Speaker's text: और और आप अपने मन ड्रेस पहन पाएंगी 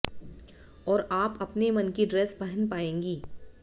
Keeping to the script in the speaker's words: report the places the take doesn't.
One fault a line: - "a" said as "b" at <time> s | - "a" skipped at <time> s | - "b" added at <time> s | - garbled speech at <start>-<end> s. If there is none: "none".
- "और" skipped at 1.1 s
- "की" added at 1.9 s